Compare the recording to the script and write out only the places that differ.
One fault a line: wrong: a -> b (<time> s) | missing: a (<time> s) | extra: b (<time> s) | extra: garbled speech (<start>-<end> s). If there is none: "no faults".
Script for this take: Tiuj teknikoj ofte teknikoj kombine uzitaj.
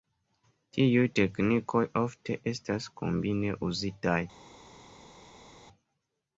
wrong: teknikoj -> estas (2.5 s)